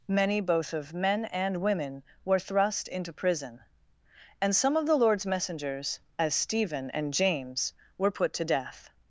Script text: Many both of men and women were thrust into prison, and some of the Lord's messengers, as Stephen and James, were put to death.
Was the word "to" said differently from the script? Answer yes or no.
no